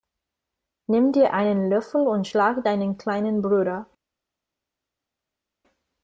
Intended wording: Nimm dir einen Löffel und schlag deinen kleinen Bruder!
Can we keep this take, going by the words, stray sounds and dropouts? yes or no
yes